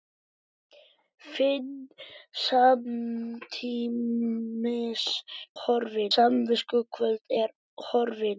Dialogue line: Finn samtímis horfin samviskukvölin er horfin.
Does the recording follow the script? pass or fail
pass